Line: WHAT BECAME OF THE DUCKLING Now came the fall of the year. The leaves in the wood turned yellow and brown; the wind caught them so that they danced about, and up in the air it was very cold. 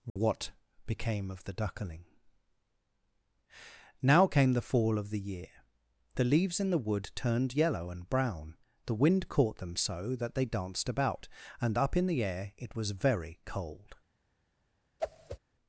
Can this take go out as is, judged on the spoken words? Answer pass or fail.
pass